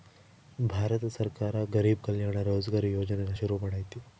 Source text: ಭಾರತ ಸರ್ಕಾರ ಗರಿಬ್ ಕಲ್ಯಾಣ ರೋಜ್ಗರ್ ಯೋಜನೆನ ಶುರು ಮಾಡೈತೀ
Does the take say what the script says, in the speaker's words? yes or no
yes